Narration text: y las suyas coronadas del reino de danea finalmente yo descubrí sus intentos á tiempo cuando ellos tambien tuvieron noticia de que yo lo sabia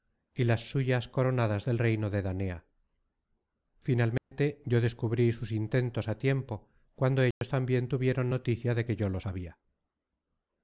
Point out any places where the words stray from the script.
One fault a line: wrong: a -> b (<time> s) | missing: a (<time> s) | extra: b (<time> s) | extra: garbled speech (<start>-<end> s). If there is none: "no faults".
no faults